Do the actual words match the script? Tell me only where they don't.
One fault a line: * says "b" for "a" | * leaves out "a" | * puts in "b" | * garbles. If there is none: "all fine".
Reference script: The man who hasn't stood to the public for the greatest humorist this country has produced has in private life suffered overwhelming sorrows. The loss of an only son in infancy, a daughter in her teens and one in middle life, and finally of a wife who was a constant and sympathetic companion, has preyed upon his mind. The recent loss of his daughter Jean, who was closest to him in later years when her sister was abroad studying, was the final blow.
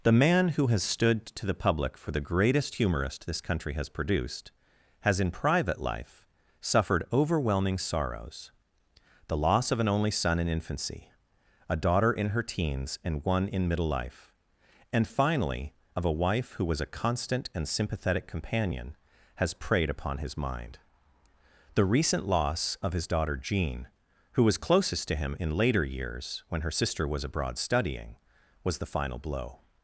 * says "has" for "hasn't"